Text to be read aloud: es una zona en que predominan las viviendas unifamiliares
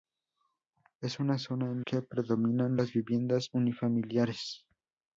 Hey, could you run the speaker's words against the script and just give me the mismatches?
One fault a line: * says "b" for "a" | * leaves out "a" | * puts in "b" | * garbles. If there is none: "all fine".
all fine